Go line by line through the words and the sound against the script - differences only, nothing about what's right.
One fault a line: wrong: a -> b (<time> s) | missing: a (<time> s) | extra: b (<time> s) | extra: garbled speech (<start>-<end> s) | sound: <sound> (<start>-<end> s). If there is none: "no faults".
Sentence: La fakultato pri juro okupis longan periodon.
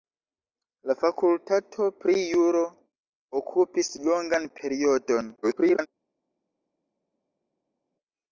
extra: garbled speech (5.4-5.9 s)